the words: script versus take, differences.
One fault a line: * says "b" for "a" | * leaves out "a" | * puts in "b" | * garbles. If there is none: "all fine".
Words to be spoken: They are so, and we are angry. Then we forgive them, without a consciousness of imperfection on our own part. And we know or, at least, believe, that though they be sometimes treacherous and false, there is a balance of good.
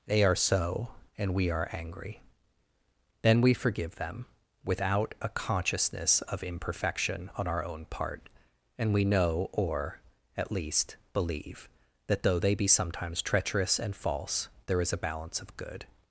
all fine